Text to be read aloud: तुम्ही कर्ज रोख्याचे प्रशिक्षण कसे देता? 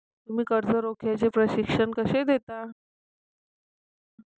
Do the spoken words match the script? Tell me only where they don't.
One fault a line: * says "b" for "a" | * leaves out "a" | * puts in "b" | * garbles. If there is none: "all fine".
all fine